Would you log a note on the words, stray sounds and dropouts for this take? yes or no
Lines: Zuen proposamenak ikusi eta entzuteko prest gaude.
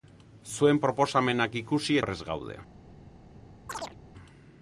yes